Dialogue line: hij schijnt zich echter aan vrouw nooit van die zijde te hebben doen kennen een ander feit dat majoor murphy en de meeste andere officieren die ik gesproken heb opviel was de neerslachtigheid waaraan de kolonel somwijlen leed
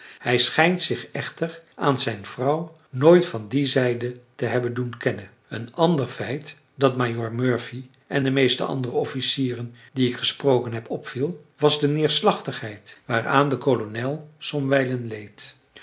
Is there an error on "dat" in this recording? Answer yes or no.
no